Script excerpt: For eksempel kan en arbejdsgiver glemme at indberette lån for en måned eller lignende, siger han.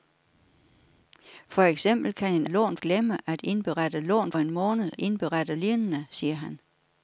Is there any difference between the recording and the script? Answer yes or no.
yes